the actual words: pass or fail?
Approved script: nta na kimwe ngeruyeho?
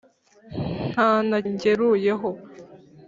fail